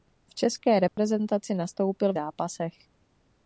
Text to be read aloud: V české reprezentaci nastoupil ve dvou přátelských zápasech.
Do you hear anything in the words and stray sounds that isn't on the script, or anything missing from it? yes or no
yes